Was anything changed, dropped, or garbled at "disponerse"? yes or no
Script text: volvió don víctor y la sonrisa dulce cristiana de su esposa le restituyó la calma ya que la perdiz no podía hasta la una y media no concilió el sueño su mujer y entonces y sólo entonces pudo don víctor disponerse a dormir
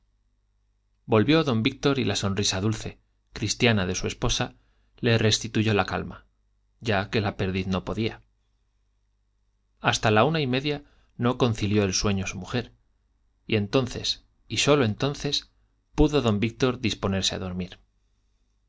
no